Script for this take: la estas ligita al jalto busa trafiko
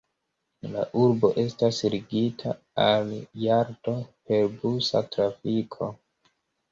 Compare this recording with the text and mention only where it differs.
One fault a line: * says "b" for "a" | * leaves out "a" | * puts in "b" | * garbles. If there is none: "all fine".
* puts in "urbo"
* puts in "per"